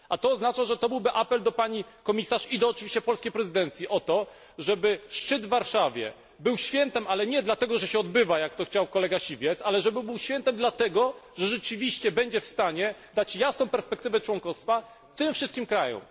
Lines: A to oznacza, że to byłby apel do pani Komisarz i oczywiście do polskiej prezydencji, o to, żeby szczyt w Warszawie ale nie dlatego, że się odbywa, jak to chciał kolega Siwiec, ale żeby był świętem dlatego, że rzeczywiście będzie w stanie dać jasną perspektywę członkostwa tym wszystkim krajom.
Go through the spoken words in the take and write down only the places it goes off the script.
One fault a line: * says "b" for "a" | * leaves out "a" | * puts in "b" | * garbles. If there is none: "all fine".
* puts in "był świętem"